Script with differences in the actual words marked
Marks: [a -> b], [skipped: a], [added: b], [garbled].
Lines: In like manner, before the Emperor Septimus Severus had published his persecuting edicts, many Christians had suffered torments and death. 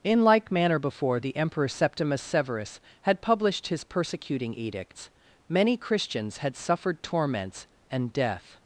In like manner, before the Emperor Septimus Severus had published his persecuting edicts, many Christians had suffered torments and death.